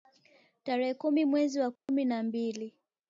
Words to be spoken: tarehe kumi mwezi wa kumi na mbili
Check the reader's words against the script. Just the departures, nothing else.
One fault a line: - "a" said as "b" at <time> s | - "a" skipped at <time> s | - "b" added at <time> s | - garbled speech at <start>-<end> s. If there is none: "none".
none